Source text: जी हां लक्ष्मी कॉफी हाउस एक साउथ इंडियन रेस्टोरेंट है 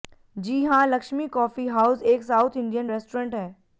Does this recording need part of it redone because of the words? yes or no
no